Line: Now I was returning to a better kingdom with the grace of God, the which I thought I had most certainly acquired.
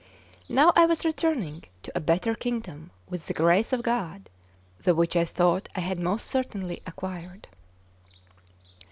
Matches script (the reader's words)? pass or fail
pass